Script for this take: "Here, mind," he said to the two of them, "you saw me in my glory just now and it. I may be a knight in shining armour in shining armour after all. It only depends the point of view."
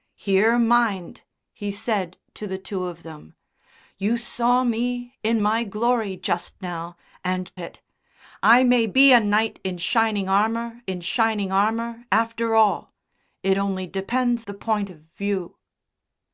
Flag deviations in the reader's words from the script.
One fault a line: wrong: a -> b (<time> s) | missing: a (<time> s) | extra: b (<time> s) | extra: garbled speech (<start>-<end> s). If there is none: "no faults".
no faults